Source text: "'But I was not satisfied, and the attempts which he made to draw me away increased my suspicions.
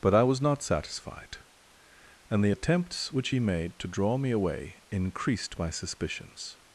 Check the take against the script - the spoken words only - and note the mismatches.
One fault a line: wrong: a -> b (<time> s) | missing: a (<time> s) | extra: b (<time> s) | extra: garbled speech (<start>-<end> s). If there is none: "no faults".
no faults